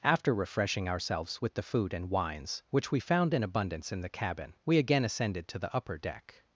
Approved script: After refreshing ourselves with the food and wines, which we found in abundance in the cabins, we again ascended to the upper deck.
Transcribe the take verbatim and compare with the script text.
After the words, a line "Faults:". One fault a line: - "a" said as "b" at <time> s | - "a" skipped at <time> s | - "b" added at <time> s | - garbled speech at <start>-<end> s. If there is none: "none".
After refreshing ourselves with the food and wines, which we found in abundance in the cabin, we again ascended to the upper deck.
Faults:
- "cabins" said as "cabin" at 4.1 s